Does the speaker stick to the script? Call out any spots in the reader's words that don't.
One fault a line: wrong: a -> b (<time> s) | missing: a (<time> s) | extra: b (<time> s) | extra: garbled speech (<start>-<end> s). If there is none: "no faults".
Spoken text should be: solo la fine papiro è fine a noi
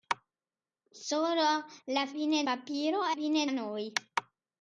no faults